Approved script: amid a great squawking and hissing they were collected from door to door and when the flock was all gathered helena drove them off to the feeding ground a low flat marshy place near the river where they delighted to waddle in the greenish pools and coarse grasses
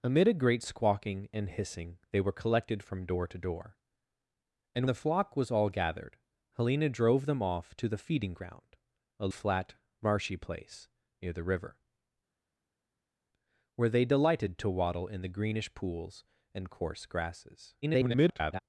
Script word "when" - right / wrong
wrong